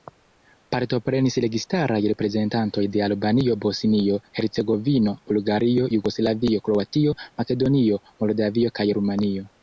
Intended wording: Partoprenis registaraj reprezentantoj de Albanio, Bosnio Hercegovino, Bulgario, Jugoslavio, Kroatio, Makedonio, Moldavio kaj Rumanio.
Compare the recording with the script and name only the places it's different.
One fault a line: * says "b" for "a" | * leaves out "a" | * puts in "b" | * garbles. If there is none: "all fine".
all fine